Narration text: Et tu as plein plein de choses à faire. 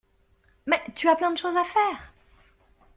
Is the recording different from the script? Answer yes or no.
yes